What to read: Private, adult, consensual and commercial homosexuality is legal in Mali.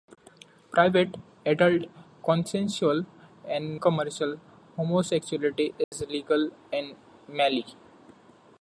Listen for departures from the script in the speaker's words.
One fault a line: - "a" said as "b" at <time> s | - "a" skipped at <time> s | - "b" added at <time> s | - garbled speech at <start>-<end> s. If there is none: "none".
none